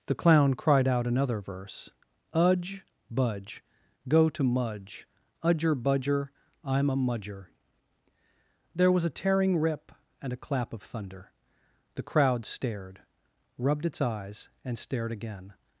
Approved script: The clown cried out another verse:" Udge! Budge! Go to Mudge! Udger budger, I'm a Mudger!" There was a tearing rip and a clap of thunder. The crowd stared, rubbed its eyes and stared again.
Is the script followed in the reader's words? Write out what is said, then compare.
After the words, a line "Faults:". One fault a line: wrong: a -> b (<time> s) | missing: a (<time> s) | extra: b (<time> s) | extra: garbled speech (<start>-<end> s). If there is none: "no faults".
The clown cried out another verse:" Udge! Budge! Go to Mudge! Udger budger, I'm a Mudger!" There was a tearing rip and a clap of thunder. The crowd stared, rubbed its eyes and stared again.
Faults:
no faults